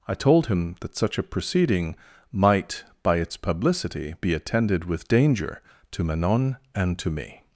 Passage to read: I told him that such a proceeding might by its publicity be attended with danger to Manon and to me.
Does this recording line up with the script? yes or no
yes